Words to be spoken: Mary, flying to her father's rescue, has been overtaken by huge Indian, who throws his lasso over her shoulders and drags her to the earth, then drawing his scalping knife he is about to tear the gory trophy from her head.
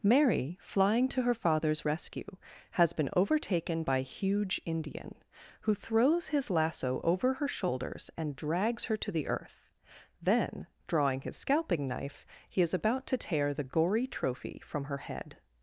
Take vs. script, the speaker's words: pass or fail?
pass